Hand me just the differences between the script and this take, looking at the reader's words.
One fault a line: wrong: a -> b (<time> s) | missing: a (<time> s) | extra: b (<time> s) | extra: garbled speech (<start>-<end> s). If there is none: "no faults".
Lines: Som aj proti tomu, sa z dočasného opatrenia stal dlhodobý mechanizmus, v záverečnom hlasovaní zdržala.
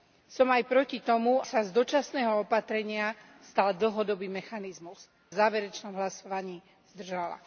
no faults